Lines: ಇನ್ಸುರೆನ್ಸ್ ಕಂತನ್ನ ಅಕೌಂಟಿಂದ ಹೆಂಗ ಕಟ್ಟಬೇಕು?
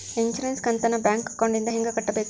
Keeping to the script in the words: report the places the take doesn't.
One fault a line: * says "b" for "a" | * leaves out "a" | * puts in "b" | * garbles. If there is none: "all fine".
* puts in "ಬ್ಯಾಂಕ್"